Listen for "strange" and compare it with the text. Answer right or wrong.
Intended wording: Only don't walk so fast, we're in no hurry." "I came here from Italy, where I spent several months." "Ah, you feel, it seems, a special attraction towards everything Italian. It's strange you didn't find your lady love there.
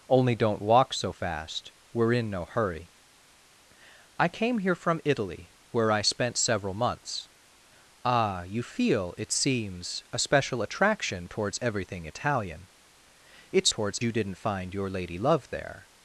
wrong